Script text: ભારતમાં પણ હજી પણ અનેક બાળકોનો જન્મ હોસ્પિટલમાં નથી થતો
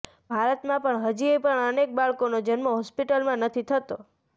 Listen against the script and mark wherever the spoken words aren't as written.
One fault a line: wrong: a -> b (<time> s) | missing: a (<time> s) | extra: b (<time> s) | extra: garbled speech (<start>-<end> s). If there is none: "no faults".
no faults